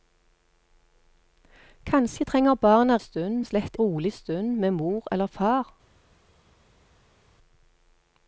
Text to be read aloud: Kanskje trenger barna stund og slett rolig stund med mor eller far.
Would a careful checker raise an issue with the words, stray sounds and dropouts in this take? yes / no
no